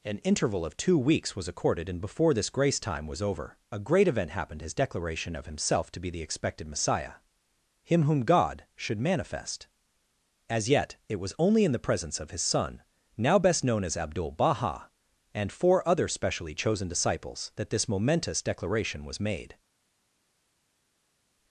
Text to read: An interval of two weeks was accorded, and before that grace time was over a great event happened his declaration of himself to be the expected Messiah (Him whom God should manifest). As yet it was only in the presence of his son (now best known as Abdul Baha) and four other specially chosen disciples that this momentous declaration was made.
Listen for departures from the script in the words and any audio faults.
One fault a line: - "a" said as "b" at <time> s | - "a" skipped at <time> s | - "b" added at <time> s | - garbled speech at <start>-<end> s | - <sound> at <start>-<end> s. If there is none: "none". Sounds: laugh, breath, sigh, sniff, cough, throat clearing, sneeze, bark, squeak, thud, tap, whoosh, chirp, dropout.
- "that" said as "this" at 2.3 s